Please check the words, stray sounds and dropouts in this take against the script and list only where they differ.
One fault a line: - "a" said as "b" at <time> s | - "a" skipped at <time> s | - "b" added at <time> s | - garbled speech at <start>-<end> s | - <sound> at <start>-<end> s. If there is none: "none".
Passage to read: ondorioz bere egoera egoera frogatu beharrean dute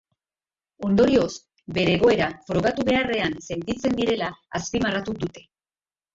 - "egoera" skipped at 2.3 s
- "sentitzen direla azpimarratu" added at 3.5 s